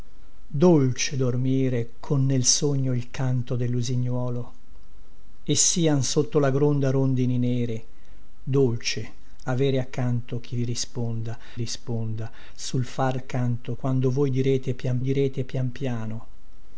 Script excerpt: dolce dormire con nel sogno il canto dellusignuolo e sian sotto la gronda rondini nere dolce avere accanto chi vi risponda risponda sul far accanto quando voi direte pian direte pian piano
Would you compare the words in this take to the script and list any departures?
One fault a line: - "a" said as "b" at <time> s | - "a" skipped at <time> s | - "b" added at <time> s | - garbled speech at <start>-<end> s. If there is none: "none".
none